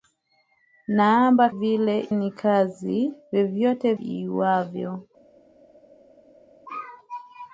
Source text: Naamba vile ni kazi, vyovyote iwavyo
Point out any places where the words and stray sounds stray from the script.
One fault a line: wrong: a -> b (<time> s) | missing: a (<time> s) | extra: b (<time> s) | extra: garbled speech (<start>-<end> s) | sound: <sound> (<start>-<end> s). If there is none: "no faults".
no faults